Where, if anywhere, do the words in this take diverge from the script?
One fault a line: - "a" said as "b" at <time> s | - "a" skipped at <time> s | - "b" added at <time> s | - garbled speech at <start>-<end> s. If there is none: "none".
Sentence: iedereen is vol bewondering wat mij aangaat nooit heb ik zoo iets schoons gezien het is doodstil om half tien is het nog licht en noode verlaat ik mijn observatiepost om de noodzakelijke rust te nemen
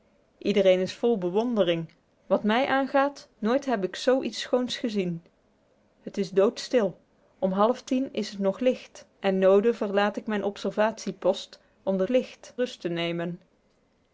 - "noodzakelijke" said as "licht" at 12.1 s